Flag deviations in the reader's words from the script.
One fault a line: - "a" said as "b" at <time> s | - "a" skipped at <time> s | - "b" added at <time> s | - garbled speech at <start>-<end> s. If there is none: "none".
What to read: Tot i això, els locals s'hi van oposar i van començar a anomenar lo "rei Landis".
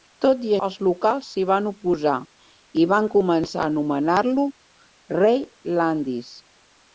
- "això" skipped at 0.5 s